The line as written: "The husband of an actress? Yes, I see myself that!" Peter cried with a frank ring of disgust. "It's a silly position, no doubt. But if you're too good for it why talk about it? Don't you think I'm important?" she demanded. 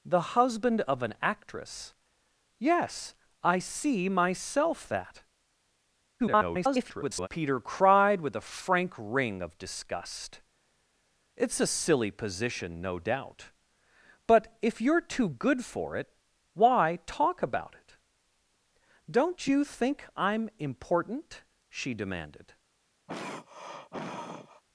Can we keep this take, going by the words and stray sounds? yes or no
no